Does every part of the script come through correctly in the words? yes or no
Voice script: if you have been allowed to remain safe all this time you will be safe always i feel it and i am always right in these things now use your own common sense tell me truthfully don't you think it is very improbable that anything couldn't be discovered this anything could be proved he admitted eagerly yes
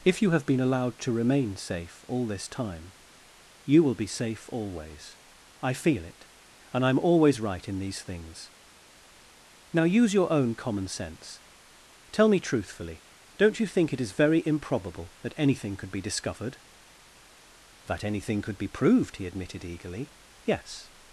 no